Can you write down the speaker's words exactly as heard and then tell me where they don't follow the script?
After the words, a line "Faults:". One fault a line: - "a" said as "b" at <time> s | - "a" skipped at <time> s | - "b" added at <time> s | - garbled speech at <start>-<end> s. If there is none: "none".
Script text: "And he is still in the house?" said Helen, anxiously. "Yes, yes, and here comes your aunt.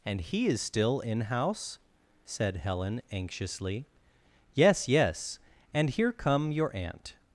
"And he is still in house?" said Helen, anxiously. "Yes, yes, and here come your aunt.
Faults:
- "the" skipped at 1.2 s
- "comes" said as "come" at 6.1 s